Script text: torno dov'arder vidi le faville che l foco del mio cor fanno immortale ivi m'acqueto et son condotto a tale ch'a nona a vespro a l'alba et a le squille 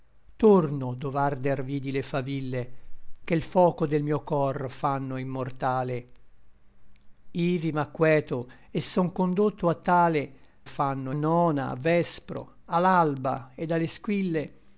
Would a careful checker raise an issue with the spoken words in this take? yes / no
yes